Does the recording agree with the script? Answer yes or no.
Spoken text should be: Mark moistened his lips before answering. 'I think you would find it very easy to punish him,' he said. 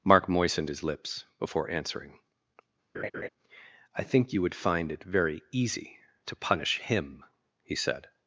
yes